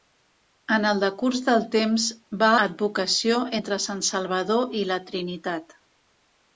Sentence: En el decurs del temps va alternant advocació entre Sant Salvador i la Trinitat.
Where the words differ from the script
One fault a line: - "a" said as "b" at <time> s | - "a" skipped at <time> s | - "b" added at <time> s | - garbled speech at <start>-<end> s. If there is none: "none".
- "alternant" skipped at 2.5 s